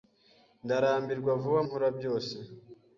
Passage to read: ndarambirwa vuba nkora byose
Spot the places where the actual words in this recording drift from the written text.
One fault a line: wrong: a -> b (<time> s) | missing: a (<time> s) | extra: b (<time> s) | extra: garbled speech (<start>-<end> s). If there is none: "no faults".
no faults